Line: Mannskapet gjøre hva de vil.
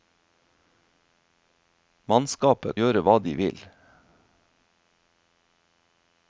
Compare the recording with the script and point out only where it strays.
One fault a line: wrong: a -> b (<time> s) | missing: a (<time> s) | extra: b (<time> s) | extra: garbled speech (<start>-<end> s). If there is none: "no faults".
no faults